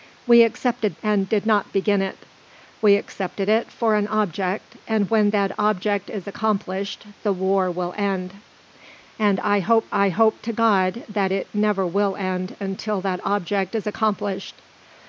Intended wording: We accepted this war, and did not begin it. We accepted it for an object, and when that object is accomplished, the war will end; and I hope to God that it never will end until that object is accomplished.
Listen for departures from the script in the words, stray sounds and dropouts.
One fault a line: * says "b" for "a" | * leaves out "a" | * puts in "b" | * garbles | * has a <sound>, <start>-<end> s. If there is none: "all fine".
* leaves out "this war"
* puts in "I hope"